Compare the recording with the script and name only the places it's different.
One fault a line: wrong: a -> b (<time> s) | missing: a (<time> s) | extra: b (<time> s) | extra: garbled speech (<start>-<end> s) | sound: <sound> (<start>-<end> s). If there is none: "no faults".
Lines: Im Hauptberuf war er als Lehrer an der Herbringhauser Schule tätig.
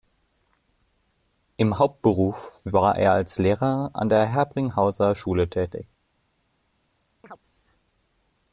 sound: chirp (7.2-7.4 s)